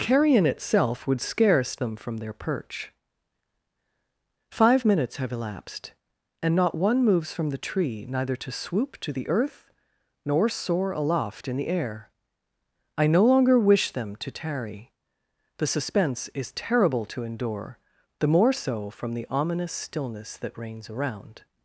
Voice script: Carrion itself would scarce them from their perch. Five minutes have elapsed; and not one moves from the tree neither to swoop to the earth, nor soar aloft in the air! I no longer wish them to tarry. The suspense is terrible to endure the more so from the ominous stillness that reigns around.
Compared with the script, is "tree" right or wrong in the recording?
right